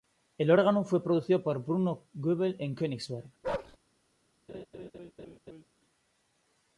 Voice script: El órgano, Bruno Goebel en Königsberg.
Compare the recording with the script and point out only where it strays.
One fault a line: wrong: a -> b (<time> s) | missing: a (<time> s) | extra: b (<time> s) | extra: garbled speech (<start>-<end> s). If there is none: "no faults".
extra: fue producido por (0.8 s)